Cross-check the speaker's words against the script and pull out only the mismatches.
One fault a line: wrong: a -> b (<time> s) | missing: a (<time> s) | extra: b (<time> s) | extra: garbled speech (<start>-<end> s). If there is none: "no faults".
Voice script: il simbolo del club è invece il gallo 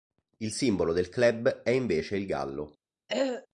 no faults